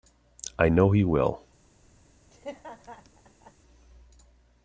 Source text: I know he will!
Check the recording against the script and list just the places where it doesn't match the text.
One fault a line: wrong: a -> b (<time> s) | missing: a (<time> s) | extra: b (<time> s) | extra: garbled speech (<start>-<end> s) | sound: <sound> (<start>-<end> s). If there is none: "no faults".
sound: laugh (2.3-3.5 s)